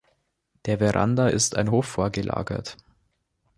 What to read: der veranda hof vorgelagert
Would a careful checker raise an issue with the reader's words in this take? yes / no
yes